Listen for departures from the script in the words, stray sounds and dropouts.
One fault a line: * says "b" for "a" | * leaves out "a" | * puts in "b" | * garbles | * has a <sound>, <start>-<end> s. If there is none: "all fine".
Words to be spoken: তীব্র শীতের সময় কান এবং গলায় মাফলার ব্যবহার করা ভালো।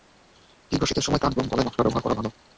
all fine